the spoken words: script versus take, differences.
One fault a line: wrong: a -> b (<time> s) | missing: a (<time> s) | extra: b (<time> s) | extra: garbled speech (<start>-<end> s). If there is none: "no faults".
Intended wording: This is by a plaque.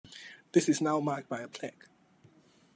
extra: now marked (0.8 s)